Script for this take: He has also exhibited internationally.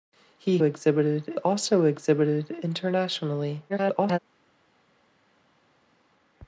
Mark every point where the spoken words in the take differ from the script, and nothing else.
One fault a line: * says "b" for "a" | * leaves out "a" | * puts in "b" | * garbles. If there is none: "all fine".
* says "exhibited" for "has"
* garbles